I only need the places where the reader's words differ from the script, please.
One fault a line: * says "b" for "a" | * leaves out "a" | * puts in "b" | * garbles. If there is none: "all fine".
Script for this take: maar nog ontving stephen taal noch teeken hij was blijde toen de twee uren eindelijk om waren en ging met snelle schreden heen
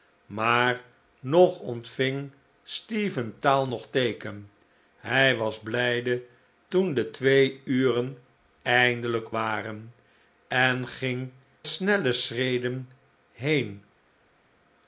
* leaves out "om"
* leaves out "met"